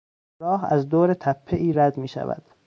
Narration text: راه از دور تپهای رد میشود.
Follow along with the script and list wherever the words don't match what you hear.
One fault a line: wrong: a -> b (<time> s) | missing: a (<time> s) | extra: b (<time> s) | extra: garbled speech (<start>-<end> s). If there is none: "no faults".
no faults